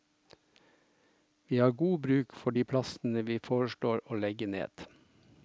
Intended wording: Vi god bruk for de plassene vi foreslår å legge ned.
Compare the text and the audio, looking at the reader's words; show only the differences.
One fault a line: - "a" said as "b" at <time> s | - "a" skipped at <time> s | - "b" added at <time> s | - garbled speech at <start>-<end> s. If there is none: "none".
- "har" added at 1.6 s